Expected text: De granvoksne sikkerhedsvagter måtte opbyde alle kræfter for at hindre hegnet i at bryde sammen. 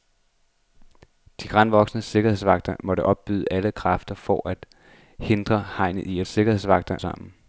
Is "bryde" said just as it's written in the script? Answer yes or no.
no